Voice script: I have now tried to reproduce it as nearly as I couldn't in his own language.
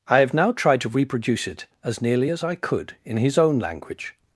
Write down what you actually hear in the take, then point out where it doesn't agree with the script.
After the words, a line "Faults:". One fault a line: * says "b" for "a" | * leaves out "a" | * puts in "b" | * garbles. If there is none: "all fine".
I have now tried to reproduce it as nearly as I could in his own language.
Faults:
* says "could" for "couldn't"